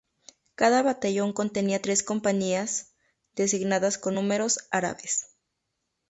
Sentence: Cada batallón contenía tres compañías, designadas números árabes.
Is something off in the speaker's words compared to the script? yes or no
yes